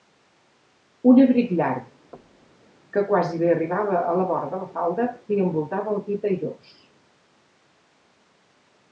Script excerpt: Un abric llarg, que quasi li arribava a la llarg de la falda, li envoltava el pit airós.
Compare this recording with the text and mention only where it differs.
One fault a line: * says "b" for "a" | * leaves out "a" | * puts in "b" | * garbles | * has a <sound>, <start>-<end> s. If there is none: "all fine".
* has a thud, 2.1-2.7 s
* says "vora" for "llarg"